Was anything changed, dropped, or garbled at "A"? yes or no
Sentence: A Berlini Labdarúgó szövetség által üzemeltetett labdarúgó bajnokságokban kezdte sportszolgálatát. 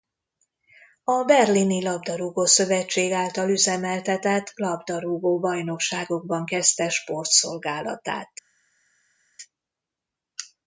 no